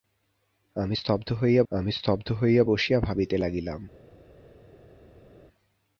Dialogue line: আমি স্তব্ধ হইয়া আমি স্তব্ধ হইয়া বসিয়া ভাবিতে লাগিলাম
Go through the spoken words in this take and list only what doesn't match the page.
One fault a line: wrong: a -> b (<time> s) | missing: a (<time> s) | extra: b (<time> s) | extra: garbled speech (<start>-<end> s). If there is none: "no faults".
no faults